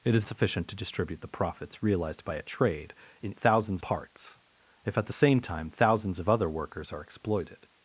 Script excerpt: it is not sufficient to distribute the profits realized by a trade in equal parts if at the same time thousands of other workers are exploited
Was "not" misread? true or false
true